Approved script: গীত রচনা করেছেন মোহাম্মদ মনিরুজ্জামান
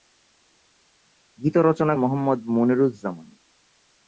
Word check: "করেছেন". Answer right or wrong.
wrong